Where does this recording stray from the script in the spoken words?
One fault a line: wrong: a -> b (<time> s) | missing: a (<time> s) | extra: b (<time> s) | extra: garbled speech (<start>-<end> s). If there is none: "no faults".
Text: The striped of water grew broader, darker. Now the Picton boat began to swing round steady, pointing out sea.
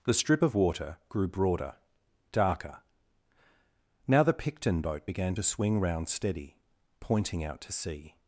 wrong: striped -> strip (0.1 s)
extra: to (7.6 s)